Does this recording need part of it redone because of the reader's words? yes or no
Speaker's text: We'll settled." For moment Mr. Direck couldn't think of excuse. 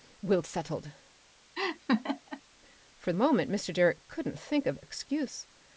no